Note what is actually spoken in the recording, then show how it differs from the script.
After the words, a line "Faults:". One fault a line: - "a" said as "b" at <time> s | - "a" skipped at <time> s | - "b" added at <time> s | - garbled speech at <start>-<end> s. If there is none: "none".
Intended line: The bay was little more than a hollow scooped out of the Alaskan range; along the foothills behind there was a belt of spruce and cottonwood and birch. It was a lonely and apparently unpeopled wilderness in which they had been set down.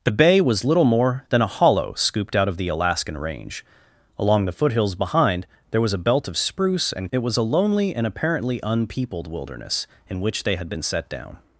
The bay was little more than a hollow scooped out of the Alaskan range; along the foothills behind there was a belt of spruce and. It was a lonely and apparently unpeopled wilderness in which they had been set down.
Faults:
- "cottonwood and birch" skipped at 7.1 s